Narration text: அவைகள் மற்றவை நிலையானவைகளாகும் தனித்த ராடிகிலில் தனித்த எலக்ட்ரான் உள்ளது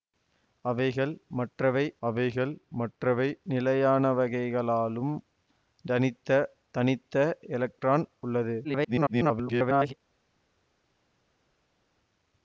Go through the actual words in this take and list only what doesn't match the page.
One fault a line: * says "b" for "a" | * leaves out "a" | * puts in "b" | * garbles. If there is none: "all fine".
* puts in "அவைகள் மற்றவை"
* leaves out "ராடிகிலில்"
* garbles